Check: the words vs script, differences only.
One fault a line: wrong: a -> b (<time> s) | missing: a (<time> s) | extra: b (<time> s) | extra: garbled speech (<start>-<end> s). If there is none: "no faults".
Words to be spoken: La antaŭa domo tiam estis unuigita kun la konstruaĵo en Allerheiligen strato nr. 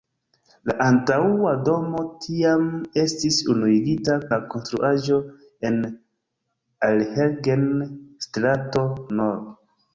missing: kun (4.2 s)